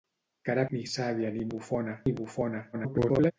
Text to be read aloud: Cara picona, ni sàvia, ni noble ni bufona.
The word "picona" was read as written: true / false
false